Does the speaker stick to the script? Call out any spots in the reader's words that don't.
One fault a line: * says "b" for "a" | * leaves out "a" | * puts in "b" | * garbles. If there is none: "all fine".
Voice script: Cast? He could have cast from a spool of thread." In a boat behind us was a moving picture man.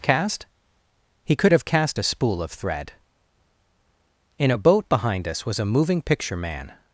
* leaves out "from"